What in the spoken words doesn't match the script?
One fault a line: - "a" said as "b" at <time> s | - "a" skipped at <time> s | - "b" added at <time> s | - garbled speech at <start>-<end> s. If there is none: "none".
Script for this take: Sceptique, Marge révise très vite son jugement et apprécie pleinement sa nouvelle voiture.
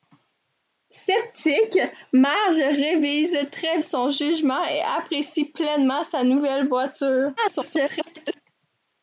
- "vite" skipped at 3.8 s
- garbled speech at 7.4-8.4 s